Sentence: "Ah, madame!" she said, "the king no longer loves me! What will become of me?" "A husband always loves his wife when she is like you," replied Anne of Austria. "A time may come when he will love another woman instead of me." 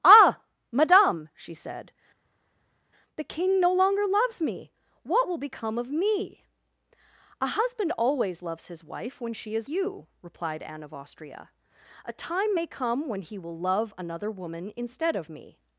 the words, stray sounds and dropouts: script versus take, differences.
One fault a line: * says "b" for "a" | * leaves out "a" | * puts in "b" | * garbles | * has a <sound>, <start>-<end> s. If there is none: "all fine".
* leaves out "like"